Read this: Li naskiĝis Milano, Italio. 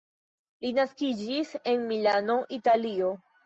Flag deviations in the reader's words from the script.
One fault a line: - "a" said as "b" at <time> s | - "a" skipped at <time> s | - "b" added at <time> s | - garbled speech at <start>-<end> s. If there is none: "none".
- "en" added at 1.8 s